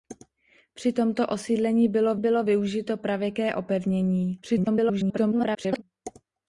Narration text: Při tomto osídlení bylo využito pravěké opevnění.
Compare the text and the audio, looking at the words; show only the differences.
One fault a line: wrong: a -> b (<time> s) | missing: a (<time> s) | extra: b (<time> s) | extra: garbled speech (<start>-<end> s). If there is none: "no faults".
extra: bylo (2.2 s)
extra: garbled speech (4.4-5.8 s)